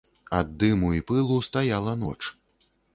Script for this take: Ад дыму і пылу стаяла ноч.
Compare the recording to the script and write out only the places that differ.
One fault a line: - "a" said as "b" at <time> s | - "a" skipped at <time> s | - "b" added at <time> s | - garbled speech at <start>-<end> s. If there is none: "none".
none